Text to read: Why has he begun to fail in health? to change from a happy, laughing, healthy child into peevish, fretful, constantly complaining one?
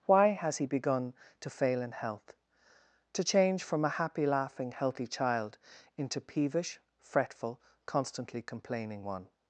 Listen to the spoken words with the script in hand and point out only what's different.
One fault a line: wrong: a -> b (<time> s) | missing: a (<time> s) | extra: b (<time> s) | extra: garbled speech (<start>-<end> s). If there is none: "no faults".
no faults